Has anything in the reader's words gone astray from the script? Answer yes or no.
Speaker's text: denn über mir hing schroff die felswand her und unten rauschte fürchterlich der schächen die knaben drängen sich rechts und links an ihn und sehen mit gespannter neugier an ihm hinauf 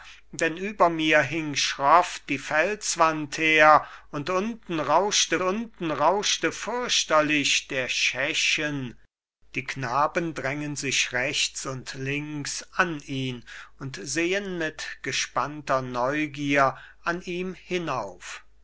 yes